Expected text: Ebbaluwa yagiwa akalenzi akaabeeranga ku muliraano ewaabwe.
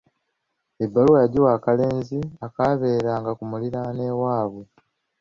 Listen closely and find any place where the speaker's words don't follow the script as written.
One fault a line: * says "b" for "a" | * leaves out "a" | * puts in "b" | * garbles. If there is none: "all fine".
all fine